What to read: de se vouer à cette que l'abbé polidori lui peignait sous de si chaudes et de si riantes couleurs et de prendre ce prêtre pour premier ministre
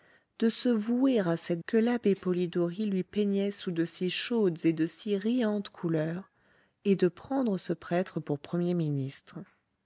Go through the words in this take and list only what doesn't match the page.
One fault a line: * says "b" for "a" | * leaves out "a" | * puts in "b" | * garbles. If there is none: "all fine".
all fine